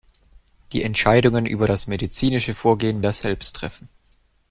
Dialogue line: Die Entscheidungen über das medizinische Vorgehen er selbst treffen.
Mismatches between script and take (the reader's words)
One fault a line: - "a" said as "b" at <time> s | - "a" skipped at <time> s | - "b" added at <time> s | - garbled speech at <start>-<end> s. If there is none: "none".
none